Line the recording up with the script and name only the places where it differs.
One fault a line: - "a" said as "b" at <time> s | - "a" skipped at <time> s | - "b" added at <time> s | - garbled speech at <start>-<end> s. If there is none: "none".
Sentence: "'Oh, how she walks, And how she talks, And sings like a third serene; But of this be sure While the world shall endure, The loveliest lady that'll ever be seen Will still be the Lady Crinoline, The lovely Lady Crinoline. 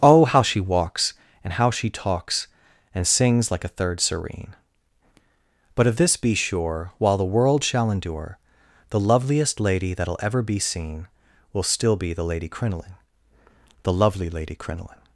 none